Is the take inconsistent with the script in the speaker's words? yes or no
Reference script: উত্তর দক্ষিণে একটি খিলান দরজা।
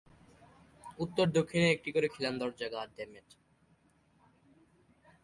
yes